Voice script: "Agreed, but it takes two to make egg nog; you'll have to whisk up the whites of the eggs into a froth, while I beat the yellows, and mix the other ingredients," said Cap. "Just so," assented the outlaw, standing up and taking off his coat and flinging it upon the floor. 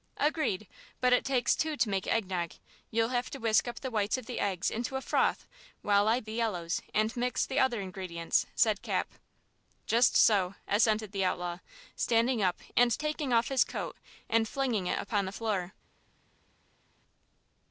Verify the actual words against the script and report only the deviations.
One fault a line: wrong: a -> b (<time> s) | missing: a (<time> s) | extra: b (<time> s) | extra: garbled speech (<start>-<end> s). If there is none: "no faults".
missing: beat (6.2 s)